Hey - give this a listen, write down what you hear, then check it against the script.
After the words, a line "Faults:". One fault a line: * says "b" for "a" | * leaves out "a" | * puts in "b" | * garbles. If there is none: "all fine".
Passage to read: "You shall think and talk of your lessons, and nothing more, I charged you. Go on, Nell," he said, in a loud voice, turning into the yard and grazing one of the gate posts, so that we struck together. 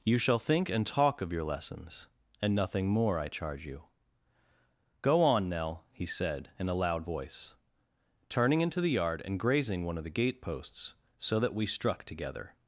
"You shall think and talk of your lessons, and nothing more, I charge you. Go on, Nell," he said, in a loud voice, turning into the yard and grazing one of the gate posts, so that we struck together.
Faults:
* says "charge" for "charged"